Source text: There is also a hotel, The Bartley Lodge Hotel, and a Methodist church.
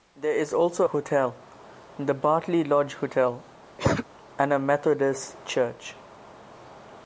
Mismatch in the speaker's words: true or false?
true